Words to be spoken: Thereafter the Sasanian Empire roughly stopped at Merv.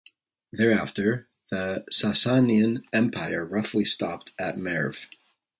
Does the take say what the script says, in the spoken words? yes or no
yes